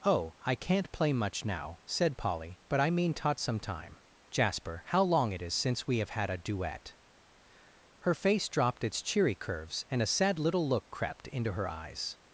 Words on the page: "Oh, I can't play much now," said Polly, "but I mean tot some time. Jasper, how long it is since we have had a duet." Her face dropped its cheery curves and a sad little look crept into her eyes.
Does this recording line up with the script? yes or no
yes